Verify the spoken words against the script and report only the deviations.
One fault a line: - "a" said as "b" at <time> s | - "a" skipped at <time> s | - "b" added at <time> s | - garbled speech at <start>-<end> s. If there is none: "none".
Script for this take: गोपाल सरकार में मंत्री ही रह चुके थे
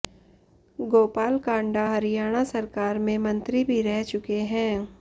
- "कांडा हरियाणा" added at 1.4 s
- "ही" said as "भी" at 3.6 s
- "थे" said as "हैं" at 4.5 s